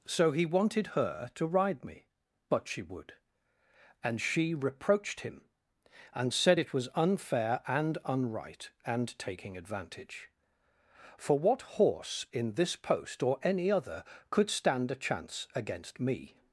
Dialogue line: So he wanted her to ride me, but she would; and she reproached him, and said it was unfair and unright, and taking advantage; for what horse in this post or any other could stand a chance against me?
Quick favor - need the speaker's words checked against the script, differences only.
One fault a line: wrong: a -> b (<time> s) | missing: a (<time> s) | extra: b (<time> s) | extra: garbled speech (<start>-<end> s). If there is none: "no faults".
no faults